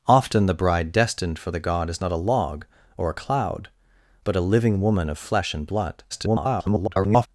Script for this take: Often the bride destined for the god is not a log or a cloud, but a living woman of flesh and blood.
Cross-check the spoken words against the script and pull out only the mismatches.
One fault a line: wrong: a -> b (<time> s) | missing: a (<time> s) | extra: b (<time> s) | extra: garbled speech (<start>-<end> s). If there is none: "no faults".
extra: garbled speech (6.1-7.3 s)